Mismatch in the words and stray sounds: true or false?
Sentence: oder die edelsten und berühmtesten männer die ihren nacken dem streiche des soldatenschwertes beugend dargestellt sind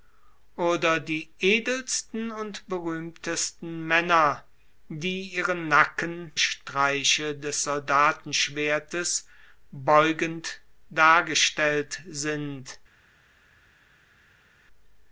true